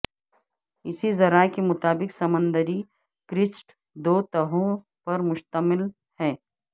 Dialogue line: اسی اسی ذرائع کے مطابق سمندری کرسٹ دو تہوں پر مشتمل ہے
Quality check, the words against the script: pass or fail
fail